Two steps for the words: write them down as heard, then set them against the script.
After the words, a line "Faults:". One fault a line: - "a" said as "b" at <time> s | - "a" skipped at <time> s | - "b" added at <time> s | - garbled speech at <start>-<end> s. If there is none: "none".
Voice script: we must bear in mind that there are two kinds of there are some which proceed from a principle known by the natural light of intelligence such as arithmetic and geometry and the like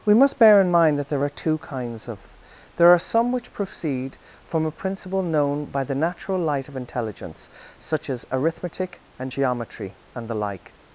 we must bear in mind that there are two kinds of there are some which proceed from a principle known by the natural light of intelligence such as arithmetic and geometry and the like
Faults:
none